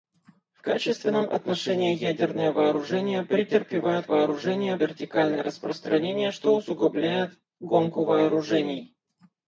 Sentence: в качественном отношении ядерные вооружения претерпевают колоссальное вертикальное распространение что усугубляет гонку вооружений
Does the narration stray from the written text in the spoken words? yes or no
yes